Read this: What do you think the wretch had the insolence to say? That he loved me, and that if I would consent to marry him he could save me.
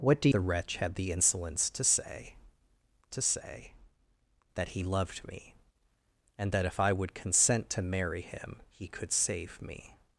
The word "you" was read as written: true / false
false